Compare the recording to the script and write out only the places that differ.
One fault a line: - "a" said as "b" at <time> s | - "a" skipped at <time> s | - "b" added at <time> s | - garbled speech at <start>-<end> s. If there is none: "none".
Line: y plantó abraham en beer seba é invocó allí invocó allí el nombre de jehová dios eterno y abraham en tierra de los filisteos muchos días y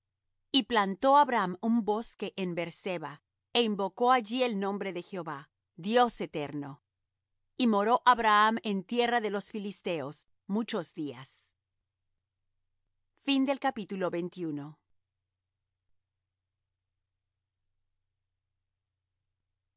- "un bosque" added at 1.6 s
- "invocó allí" skipped at 4.4 s
- "moró" added at 7.7 s